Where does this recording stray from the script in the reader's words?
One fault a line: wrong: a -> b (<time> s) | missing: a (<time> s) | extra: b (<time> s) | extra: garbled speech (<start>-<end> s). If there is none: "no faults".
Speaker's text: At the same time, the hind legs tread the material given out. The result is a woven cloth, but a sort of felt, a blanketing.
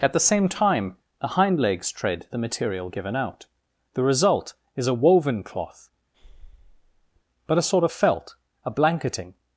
no faults